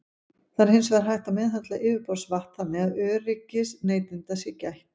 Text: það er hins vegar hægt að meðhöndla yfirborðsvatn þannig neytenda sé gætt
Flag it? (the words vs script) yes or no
yes